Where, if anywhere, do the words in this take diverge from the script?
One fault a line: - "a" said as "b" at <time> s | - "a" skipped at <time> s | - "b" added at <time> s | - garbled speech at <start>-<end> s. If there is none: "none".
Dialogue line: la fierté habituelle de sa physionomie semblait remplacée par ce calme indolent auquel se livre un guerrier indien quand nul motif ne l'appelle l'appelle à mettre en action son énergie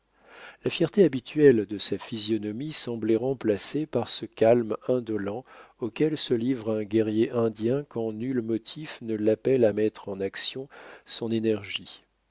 - "l'appelle" skipped at 9.6 s